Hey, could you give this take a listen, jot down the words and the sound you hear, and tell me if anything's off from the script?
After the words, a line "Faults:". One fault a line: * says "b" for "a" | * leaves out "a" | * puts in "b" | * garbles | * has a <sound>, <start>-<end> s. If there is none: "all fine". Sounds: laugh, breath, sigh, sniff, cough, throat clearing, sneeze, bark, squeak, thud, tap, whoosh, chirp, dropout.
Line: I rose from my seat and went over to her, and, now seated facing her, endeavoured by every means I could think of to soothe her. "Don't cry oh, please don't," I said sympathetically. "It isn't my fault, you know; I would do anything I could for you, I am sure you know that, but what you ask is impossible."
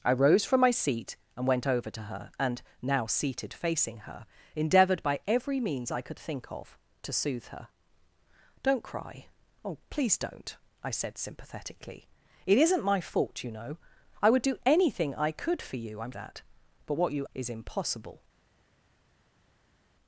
I rose from my seat and went over to her, and, now seated facing her, endeavoured by every means I could think of to soothe her. "Don't cry oh, please don't," I said sympathetically. "It isn't my fault, you know; I would do anything I could for you, I am that, but what you is impossible."
Faults:
* leaves out "sure you know"
* leaves out "ask"